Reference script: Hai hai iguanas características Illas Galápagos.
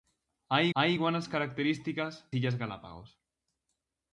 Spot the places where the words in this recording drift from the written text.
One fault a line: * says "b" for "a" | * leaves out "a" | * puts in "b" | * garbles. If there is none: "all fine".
all fine